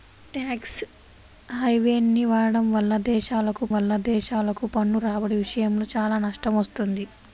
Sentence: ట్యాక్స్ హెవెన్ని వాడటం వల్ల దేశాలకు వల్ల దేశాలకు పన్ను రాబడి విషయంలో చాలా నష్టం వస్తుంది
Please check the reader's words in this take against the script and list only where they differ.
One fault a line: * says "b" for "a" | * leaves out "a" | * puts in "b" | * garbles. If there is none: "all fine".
all fine